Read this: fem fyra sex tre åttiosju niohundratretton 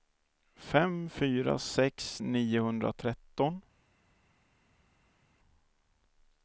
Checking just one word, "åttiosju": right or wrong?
wrong